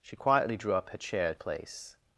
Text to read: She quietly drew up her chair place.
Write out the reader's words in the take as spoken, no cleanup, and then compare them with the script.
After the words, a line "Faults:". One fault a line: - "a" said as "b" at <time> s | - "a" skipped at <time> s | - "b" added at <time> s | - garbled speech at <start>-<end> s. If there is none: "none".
She quietly drew up her chair place.
Faults:
none